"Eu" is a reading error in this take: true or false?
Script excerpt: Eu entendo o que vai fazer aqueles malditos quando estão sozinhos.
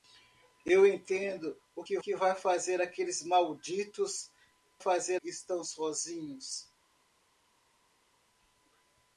false